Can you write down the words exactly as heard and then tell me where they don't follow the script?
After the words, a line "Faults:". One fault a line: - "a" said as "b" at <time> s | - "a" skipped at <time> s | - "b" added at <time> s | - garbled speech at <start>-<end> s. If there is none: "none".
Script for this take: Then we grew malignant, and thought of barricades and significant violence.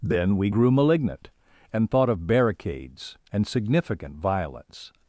Then we grew malignant, and thought of barricades and significant violence.
Faults:
none